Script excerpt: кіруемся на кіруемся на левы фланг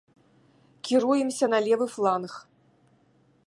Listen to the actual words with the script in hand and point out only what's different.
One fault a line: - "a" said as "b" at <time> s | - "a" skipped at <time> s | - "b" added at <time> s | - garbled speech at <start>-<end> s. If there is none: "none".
- "кіруемся на" skipped at 1.6 s